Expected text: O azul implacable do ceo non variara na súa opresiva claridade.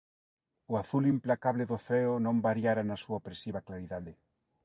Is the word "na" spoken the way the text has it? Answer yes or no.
yes